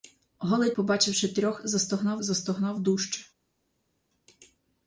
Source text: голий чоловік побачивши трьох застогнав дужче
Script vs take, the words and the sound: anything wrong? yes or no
yes